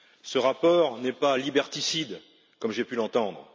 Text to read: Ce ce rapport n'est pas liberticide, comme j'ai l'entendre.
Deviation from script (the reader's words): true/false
true